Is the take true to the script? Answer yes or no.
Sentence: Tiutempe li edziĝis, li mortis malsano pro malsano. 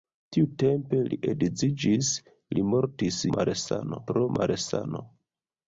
yes